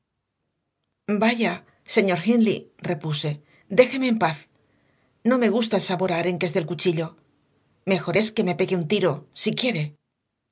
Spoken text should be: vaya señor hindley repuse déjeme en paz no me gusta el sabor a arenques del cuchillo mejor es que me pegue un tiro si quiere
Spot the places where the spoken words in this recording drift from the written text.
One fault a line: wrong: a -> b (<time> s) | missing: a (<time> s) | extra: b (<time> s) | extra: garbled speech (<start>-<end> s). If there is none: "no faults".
no faults